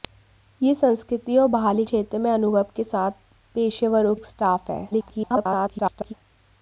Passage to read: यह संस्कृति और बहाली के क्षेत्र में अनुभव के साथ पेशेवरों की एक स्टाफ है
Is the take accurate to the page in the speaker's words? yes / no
no